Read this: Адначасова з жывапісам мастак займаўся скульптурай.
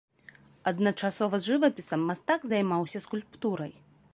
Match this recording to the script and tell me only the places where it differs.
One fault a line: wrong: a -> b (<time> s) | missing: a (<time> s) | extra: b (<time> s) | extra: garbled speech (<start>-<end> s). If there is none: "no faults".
no faults